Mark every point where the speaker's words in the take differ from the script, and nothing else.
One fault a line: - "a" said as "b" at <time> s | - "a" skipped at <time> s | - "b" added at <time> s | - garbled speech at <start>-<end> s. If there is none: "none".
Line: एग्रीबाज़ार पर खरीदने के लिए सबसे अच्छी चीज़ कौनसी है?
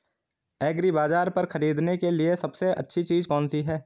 none